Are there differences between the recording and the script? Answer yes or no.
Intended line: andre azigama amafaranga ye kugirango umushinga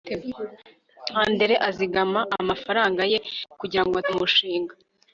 no